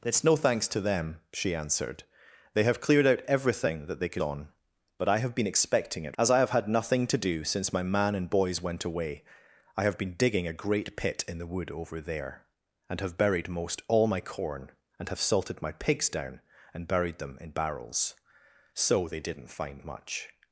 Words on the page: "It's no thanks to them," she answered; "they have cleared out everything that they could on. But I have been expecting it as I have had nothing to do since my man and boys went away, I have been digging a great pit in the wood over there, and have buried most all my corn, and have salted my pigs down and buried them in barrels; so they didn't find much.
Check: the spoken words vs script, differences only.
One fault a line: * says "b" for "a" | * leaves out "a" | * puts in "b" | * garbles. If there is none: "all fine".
all fine